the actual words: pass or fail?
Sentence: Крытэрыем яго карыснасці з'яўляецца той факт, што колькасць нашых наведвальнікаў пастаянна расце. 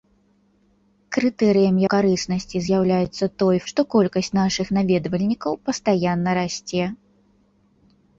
fail